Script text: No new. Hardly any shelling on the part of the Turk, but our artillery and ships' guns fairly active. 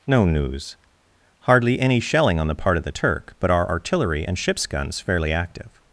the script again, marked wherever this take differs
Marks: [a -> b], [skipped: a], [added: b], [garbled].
No [new. -> news] Hardly any shelling on the part of the Turk, but our artillery and ships' guns fairly active.